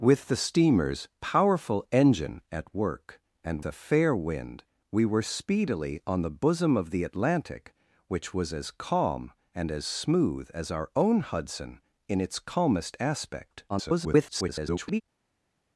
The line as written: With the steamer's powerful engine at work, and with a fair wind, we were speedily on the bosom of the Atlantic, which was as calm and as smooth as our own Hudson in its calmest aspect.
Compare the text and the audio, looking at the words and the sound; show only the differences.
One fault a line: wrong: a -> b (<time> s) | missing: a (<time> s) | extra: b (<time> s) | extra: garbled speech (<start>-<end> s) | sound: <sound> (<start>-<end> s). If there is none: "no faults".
missing: with (3.6 s)
extra: garbled speech (13.7-15.0 s)